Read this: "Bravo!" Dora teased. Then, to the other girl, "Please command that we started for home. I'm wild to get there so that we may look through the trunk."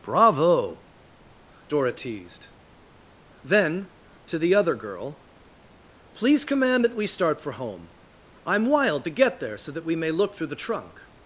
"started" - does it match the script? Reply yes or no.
no